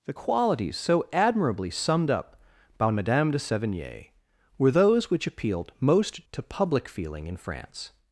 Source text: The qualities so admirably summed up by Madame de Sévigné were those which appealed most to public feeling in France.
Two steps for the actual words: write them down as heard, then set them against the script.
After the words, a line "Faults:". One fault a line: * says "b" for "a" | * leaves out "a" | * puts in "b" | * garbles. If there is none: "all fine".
The qualities so admirably summed up by Madame de Sévigné were those which appealed most to public feeling in France.
Faults:
all fine